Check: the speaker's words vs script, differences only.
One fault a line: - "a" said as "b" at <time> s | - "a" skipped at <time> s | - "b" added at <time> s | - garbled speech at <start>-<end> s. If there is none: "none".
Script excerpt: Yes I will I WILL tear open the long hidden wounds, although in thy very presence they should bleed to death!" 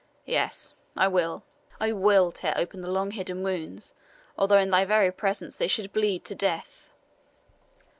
none